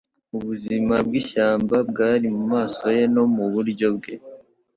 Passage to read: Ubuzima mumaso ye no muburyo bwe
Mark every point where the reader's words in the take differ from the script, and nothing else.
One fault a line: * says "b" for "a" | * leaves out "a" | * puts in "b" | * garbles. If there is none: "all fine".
* puts in "bwishyamba bwari"